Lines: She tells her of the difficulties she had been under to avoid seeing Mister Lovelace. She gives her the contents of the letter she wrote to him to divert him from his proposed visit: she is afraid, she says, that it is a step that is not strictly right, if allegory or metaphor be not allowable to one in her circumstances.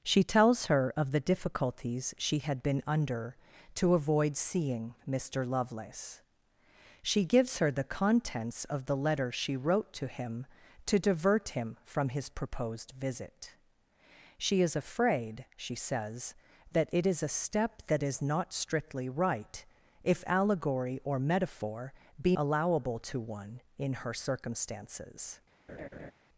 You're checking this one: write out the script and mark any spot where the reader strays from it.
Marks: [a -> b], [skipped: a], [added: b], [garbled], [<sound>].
She tells her of the difficulties she had been under to avoid seeing Mister Lovelace. She gives her the contents of the letter she wrote to him to divert him from his proposed visit: she is afraid, she says, that it is a step that is not strictly right, if allegory or metaphor be [skipped: not] allowable to one in her circumstances. [laugh]